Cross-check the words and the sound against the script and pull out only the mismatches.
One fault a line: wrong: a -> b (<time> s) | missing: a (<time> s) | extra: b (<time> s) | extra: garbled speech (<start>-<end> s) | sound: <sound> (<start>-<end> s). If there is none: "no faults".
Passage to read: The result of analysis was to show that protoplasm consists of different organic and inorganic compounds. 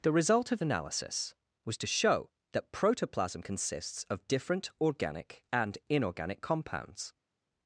no faults